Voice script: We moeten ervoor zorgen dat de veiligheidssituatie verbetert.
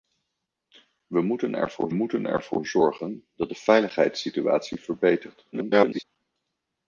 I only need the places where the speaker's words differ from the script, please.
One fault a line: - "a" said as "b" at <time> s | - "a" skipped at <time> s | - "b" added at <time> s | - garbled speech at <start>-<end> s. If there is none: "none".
- "moeten ervoor" added at 1.9 s
- garbled speech at 5.5-6.0 s